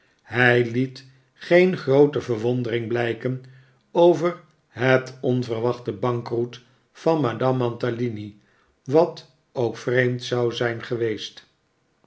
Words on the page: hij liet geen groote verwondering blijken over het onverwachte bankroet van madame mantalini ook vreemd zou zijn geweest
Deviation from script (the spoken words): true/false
true